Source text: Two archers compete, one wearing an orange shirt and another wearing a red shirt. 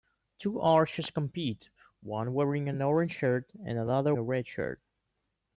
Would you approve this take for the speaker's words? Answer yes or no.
no